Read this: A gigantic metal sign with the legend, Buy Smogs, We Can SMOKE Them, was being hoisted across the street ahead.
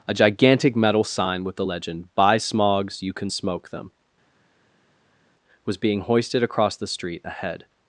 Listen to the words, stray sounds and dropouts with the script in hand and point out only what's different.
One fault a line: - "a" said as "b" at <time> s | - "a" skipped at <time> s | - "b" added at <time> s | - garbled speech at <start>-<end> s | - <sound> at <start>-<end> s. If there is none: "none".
- "We" said as "You" at 3.0 s